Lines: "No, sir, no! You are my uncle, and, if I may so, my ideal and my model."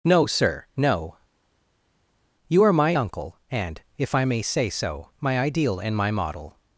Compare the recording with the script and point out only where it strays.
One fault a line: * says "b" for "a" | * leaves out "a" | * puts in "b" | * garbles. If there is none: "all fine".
* puts in "say"